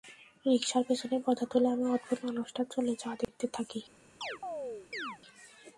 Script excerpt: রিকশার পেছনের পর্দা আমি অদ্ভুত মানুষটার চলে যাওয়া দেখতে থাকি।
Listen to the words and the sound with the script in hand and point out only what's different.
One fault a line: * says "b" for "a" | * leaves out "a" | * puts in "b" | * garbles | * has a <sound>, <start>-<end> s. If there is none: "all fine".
* puts in "তুলে"
* has a dropout, 3.2-3.3 s
* has a chirp, 4.2-5.2 s